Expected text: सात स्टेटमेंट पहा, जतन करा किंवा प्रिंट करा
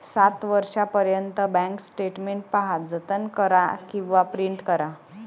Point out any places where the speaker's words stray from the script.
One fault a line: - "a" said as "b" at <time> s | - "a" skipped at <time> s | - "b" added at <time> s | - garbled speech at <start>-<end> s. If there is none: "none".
- "वर्षांपर्यंत बँक" added at 0.5 s